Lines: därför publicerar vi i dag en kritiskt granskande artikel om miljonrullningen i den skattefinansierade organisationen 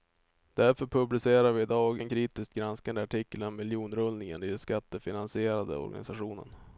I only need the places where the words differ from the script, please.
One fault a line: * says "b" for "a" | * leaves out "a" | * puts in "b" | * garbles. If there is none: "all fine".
all fine